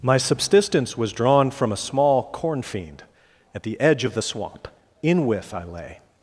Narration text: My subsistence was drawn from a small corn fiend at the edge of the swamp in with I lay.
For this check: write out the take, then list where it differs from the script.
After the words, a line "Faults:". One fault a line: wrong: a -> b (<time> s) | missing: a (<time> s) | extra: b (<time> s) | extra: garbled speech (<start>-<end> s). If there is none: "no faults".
My subsistence was drawn from a small corn fiend at the edge of the swamp in with I lay.
Faults:
no faults